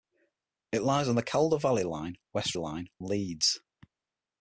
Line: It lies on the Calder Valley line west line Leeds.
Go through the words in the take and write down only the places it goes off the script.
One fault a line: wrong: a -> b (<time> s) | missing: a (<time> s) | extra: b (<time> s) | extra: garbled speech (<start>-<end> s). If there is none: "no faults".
no faults